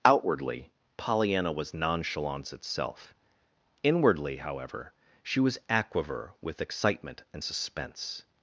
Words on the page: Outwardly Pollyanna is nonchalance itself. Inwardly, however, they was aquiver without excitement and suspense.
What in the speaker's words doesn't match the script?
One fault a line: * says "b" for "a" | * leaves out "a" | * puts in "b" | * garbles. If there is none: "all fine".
* says "was" for "is"
* says "she" for "they"
* says "with" for "without"